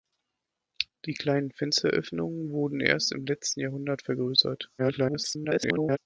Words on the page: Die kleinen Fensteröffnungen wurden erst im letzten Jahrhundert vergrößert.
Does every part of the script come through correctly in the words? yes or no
no